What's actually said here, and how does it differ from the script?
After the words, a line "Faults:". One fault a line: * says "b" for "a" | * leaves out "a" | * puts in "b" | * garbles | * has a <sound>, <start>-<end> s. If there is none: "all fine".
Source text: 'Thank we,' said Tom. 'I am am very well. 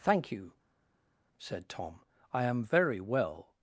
'Thank you,' said Tom. 'I am very well.
Faults:
* says "you" for "we"
* leaves out "am"